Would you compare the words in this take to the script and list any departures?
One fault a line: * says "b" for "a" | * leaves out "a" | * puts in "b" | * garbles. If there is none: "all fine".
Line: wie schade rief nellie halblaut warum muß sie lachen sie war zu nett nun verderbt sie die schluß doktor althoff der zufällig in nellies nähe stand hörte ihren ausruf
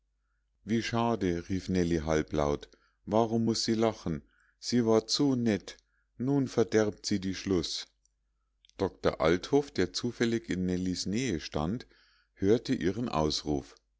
all fine